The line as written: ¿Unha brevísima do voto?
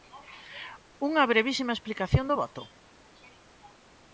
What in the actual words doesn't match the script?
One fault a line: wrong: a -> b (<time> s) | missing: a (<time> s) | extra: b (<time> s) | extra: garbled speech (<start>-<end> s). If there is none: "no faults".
extra: explicación (1.8 s)